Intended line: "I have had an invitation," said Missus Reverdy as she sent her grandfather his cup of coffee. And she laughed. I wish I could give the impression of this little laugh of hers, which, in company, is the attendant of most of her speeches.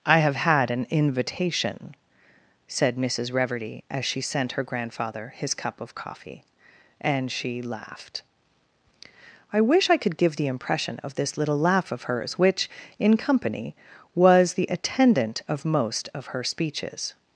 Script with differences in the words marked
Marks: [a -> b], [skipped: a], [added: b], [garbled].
"I have had an invitation," said Missus Reverdy as she sent her grandfather his cup of coffee. And she laughed. I wish I could give the impression of this little laugh of hers, which, in company, [is -> was] the attendant of most of her speeches.